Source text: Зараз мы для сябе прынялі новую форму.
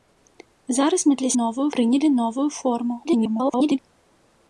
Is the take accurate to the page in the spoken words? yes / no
no